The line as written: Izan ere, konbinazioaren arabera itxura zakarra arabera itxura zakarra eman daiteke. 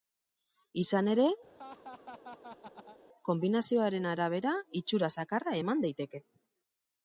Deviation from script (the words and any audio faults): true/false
true